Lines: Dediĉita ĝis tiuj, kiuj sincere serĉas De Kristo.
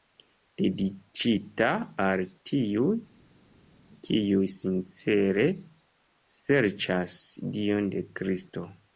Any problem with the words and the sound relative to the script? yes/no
yes